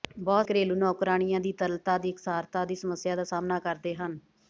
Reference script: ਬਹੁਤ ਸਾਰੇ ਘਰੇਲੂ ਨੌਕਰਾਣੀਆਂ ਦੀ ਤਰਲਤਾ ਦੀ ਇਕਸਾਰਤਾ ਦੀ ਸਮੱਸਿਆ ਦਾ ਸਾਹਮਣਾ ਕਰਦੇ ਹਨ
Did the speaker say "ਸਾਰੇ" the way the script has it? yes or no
no